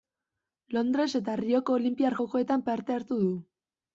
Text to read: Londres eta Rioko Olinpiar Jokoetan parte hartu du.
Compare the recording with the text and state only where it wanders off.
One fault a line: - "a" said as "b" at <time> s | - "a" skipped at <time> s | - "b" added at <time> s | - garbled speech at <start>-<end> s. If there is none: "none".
none